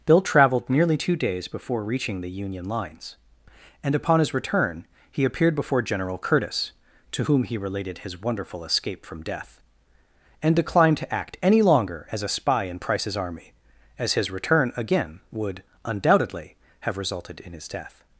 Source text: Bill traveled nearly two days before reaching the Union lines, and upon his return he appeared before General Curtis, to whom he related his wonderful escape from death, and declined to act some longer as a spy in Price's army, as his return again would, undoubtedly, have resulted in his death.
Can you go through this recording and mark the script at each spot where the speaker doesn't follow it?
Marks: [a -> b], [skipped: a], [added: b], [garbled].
Bill traveled nearly two days before reaching the Union lines, and upon his return he appeared before General Curtis, to whom he related his wonderful escape from death, and declined to act [some -> any] longer as a spy in Price's army, as his return again would, undoubtedly, have resulted in his death.